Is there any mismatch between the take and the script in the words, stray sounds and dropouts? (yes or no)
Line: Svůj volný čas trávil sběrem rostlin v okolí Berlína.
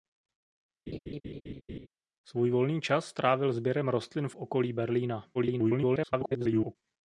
yes